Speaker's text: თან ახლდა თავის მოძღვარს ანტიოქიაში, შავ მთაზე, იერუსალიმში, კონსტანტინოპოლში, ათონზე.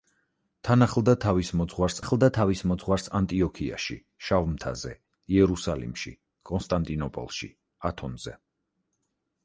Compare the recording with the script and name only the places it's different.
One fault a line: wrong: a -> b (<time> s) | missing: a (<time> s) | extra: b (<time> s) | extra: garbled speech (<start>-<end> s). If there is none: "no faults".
extra: ახლდა თავის მოძღვარს (2.0 s)